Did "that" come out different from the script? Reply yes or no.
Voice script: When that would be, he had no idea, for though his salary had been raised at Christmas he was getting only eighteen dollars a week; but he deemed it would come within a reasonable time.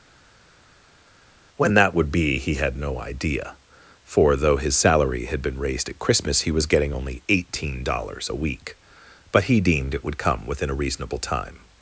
no